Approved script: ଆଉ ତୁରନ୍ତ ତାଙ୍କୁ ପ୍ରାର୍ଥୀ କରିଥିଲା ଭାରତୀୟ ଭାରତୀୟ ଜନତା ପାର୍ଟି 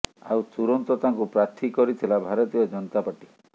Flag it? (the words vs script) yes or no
yes